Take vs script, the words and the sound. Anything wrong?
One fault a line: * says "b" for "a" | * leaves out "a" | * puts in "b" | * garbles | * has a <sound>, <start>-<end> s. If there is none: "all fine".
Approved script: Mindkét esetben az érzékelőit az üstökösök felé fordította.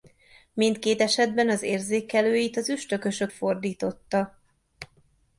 * leaves out "felé"